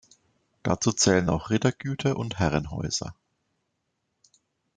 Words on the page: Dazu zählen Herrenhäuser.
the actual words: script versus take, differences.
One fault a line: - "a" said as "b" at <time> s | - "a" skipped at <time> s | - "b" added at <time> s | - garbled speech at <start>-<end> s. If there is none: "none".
- "auch Rittergüter und" added at 1.3 s